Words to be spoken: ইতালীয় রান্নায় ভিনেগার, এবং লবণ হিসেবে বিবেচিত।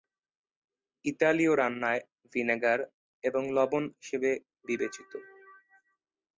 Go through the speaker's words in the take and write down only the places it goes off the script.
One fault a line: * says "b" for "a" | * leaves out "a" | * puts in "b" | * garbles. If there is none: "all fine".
all fine